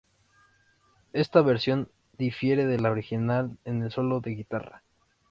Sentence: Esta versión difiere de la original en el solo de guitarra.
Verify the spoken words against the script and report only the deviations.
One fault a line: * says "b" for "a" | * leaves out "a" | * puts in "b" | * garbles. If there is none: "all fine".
all fine